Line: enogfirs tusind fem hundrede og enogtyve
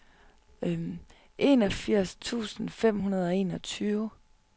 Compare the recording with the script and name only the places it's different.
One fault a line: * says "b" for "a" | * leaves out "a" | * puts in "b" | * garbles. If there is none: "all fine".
all fine